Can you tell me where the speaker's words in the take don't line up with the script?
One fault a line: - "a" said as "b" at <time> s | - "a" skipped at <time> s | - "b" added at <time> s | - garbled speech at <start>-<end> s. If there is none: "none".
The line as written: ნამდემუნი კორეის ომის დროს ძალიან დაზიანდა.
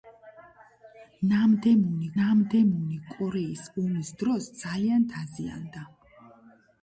- "ნამდემუნი" added at 2.2 s